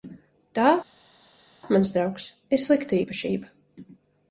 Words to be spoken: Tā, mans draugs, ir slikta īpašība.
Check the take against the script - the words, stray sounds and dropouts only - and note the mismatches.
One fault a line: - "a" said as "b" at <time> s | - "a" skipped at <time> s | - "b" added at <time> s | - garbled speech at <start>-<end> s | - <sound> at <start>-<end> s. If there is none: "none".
none